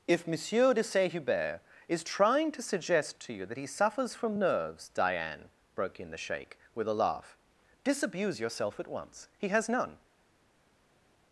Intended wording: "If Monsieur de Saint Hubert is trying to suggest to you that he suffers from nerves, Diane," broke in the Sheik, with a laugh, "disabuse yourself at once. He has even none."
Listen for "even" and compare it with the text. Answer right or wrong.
wrong